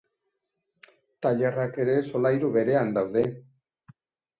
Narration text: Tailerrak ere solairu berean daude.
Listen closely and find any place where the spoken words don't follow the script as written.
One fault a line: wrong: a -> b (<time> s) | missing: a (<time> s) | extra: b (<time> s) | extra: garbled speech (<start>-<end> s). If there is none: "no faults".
no faults